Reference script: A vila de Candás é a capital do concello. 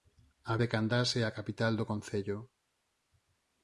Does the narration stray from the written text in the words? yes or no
yes